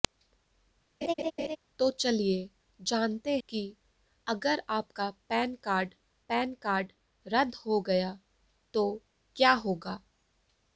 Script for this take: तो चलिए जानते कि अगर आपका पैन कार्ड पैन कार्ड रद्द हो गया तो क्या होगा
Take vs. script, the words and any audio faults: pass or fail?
fail